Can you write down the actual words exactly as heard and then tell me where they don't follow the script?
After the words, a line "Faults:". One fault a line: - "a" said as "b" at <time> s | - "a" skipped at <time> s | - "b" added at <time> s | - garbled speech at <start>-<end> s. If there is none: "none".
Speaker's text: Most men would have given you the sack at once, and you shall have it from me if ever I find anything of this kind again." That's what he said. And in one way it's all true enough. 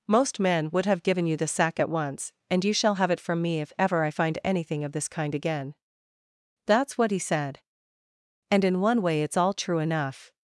Most men would have given you the sack at once, and you shall have it from me if ever I find anything of this kind again." That's what he said. And in one way it's all true enough.
Faults:
none